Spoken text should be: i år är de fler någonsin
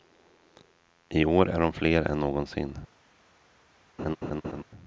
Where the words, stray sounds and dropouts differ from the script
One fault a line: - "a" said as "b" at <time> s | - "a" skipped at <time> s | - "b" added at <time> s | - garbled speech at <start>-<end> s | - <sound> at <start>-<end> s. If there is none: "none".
- "än" added at 2.0 s
- laugh at 4.0-4.6 s